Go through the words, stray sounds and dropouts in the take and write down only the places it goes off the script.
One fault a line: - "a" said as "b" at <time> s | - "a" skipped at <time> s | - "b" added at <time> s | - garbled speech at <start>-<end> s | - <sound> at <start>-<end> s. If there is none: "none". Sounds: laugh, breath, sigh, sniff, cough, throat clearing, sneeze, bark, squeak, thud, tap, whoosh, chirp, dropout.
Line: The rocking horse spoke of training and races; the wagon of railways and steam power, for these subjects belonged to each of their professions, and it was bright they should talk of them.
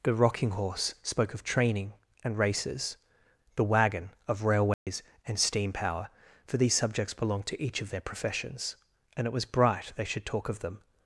- dropout at 4.7-4.9 s